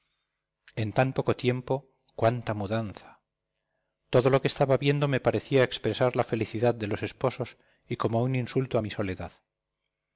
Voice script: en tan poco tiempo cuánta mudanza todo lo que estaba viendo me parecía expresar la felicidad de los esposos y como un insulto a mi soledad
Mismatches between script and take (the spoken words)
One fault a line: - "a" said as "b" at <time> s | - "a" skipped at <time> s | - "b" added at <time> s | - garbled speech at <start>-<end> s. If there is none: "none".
none